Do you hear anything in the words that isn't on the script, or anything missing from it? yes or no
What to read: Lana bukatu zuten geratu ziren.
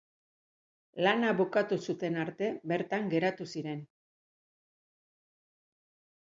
yes